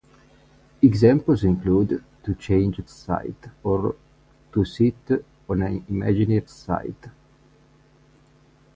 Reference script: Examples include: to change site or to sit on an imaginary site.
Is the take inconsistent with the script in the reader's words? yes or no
no